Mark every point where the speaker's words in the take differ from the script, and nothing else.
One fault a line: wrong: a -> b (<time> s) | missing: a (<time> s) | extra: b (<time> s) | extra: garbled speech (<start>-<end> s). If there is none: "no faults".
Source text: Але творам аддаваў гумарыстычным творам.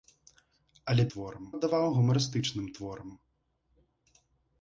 no faults